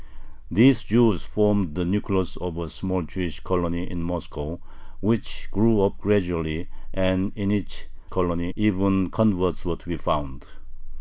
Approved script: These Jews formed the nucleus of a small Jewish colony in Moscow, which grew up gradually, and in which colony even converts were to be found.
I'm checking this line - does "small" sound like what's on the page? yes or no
yes